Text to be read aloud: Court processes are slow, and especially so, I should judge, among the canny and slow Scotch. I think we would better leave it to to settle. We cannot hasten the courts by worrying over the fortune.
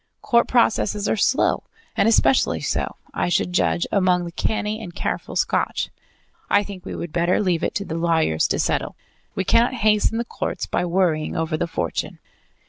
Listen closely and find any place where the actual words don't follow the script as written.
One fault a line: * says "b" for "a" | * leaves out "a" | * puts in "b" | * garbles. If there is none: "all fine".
* says "careful" for "slow"
* puts in "the lawyers"